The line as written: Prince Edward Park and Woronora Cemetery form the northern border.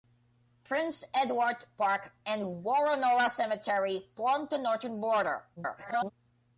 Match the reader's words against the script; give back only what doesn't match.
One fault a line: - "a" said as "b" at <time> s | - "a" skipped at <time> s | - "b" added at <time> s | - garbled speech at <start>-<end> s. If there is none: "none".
- garbled speech at 5.6-6.1 s